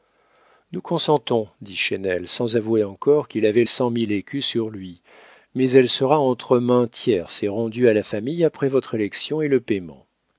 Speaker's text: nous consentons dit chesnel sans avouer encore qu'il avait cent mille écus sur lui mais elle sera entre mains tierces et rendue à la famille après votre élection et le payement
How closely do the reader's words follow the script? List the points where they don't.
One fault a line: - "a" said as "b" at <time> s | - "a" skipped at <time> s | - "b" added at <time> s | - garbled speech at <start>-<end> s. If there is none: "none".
none